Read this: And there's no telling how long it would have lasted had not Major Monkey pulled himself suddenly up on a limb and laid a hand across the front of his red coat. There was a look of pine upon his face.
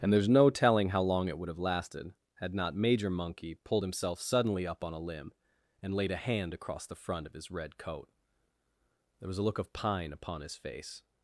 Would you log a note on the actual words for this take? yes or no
no